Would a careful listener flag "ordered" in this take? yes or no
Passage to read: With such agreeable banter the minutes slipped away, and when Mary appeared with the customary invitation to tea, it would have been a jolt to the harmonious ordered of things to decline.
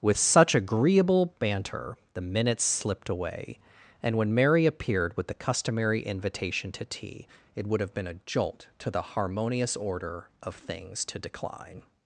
yes